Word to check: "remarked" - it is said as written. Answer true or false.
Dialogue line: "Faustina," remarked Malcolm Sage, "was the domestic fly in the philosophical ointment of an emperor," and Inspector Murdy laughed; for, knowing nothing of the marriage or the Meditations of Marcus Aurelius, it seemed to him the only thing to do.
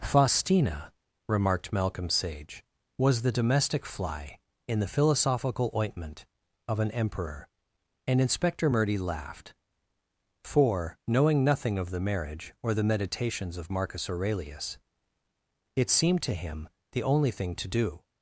true